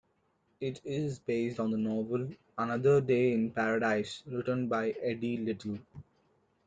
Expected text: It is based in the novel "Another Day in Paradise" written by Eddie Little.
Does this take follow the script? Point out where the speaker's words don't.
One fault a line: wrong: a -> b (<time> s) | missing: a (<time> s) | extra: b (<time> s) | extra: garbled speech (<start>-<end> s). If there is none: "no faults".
wrong: in -> on (1.6 s)